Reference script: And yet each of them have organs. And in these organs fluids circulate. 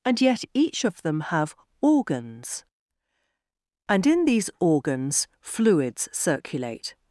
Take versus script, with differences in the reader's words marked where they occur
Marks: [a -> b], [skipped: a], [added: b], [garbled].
And yet each of them have organs. And in these organs fluids circulate.